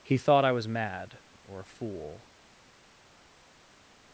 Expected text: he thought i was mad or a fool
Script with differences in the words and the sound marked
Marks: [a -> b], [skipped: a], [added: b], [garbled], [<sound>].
he thought i was mad or a fool